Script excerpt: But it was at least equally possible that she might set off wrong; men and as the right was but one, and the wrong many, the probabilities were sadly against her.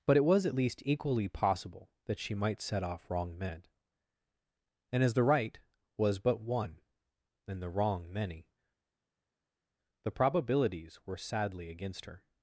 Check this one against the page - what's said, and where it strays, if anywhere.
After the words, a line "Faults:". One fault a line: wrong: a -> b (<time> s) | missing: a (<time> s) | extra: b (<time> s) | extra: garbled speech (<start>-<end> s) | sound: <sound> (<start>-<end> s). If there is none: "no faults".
But it was at least equally possible that she might set off wrong; men and as the right was but one, and the wrong many, the probabilities were sadly against her.
Faults:
no faults